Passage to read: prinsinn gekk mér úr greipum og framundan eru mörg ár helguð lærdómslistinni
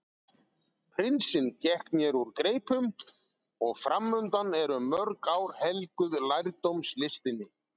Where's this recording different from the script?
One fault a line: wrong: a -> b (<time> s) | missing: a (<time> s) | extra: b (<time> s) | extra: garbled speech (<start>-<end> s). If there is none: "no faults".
no faults